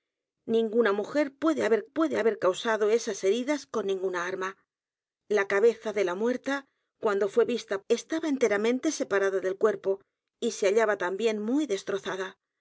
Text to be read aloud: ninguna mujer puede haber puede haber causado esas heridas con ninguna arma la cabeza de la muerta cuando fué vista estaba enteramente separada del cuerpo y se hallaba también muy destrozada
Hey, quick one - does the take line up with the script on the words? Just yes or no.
yes